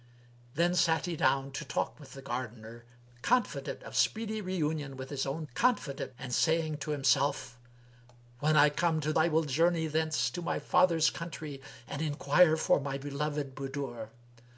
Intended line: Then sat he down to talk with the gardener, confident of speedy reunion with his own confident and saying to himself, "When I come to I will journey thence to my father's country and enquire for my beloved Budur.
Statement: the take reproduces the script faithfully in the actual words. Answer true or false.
true